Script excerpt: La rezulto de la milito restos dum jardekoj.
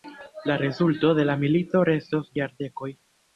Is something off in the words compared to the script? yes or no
yes